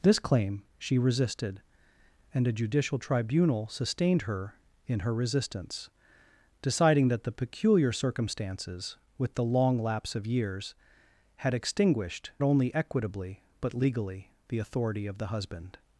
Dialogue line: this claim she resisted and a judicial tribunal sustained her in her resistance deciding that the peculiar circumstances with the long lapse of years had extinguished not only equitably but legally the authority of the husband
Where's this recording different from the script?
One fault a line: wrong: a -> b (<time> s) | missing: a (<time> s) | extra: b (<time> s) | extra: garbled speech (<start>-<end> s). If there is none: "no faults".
missing: not (12.3 s)